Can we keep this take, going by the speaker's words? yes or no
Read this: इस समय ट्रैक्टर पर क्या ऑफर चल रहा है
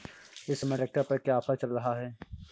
yes